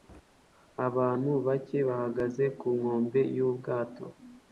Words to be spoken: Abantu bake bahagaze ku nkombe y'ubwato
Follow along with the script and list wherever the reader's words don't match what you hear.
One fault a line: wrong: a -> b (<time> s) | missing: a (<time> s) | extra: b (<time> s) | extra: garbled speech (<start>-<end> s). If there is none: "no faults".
no faults